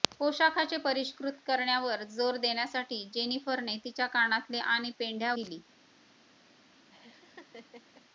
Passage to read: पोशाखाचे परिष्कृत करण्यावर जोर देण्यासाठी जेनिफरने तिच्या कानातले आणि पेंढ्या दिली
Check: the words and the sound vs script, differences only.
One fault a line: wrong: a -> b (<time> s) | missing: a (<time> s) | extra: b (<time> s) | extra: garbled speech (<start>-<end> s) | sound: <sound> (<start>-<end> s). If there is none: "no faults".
sound: laugh (6.9-8.0 s)